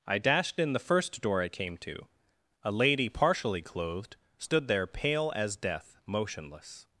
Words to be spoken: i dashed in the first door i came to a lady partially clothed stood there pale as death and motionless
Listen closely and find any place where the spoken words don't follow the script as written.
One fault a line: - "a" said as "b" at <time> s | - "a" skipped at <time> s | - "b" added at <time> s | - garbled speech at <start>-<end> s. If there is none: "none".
- "and" skipped at 6.0 s